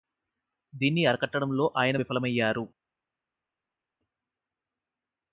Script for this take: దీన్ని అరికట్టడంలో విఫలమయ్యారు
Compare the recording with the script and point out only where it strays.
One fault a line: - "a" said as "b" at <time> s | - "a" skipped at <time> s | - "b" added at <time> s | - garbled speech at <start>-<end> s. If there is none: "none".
- "ఆయన" added at 1.8 s